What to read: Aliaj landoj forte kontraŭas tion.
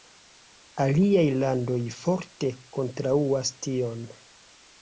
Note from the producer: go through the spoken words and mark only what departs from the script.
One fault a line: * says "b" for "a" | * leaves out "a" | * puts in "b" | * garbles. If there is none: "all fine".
all fine